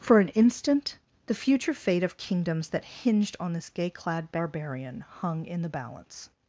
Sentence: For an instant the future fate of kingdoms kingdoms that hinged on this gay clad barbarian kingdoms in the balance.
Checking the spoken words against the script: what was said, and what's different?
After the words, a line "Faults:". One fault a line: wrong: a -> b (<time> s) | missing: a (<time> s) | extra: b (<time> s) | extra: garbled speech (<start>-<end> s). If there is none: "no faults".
For an instant the future fate of kingdoms that hinged on this gay clad barbarian hung in the balance.
Faults:
missing: kingdoms (2.7 s)
wrong: kingdoms -> hung (5.2 s)